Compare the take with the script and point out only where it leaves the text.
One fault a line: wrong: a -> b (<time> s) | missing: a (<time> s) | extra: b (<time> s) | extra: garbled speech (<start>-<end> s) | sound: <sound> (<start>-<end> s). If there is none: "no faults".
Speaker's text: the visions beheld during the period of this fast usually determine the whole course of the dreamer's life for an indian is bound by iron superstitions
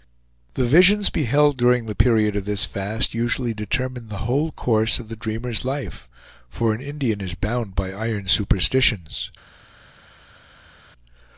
no faults